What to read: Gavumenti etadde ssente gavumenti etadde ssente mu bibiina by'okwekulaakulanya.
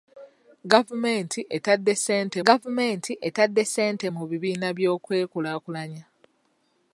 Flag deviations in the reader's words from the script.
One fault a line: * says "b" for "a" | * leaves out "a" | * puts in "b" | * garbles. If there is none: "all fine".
all fine